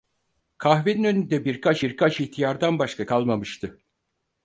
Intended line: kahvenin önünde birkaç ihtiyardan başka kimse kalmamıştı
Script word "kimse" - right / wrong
wrong